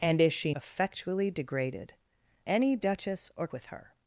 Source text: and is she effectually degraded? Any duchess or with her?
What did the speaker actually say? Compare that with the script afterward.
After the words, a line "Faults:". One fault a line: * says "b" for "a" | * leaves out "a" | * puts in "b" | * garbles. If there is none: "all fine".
and is she effectually degraded? Any duchess or with her?
Faults:
all fine